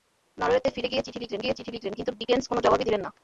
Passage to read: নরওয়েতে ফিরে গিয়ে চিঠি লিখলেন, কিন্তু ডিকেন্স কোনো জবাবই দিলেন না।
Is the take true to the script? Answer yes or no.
no